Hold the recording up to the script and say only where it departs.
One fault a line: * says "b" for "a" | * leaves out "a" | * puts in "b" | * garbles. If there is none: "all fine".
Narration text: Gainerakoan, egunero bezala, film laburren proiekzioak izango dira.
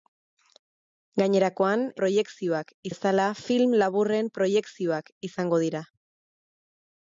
* says "proiekzioak" for "egunero"